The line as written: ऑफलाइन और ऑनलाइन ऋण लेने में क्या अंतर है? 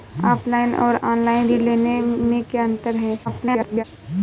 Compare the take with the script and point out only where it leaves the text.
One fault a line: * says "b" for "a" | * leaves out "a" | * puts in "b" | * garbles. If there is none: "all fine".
* garbles